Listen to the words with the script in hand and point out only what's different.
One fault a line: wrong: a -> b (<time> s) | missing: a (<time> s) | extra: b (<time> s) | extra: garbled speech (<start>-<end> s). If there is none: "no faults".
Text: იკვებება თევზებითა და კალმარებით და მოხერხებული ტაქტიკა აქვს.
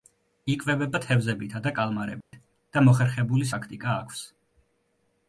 no faults